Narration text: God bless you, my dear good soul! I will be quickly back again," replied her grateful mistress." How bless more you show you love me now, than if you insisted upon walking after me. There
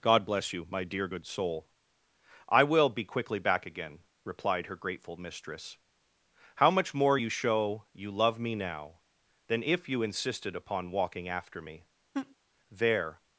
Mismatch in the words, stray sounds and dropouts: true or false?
true